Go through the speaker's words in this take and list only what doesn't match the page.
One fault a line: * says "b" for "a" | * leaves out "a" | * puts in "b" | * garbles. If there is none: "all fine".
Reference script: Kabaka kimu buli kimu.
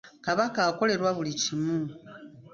* says "akolerwa" for "kimu"